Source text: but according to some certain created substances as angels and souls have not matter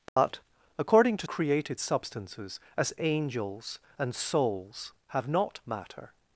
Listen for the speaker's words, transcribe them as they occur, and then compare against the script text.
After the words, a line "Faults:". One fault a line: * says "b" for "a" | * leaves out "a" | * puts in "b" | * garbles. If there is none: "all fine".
but according to created substances as angels and souls have not matter
Faults:
* leaves out "some certain"